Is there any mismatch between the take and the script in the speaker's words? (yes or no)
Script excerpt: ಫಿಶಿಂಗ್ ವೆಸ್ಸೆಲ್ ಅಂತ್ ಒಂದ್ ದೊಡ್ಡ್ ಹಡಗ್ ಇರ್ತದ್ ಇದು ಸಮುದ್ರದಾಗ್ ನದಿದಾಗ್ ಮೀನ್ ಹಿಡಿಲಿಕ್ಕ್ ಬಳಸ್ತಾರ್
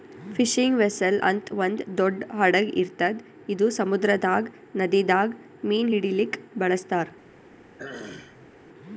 no